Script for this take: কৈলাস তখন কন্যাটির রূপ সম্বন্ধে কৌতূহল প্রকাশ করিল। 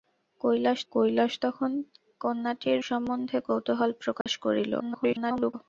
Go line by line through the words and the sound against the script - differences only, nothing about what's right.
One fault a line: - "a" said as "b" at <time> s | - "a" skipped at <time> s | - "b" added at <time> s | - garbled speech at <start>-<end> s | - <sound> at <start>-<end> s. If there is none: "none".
- "কৈলাস" added at 0.9 s
- "রূপ" skipped at 2.8 s
- dropout at 4.2-4.3 s
- garbled speech at 4.8-5.5 s